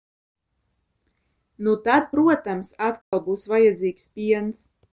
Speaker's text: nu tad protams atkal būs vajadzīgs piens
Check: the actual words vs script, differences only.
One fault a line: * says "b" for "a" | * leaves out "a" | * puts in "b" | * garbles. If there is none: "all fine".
all fine